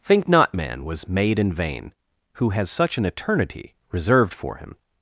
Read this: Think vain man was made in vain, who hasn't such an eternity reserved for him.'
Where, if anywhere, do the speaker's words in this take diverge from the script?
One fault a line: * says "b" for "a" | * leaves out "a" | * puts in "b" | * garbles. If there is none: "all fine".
* says "not" for "vain"
* says "has" for "hasn't"